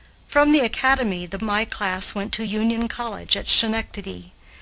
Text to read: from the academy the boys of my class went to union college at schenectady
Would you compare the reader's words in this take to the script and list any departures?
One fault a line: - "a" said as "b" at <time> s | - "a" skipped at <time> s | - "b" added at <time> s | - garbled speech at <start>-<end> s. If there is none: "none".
- "boys of" skipped at 1.4 s